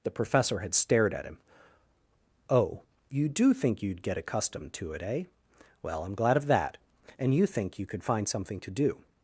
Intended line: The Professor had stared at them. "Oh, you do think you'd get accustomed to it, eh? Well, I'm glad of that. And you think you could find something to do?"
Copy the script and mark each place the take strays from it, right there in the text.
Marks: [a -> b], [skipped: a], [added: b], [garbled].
The Professor had stared at [them. -> him] "Oh, you do think you'd get accustomed to it, eh? Well, I'm glad of that. And you think you could find something to do?"